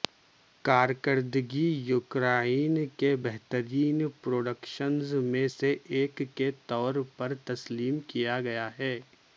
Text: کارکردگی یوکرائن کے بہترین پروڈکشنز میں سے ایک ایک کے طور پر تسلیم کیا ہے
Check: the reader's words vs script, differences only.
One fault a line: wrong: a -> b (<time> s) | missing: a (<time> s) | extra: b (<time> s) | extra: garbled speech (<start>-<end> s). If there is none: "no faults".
missing: ایک (6.2 s)
extra: گیا (8.4 s)